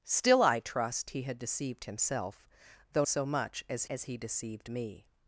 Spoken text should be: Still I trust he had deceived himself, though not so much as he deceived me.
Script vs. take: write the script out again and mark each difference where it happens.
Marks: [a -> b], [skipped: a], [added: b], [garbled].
Still I trust he had deceived himself, though [skipped: not] so much as [added: as] he deceived me.